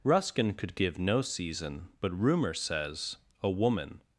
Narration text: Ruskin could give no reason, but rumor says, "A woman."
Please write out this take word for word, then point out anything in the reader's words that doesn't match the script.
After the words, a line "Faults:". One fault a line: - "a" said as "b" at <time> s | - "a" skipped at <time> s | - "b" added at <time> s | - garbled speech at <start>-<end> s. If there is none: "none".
Ruskin could give no season, but rumor says, "A woman."
Faults:
- "reason" said as "season" at 1.2 s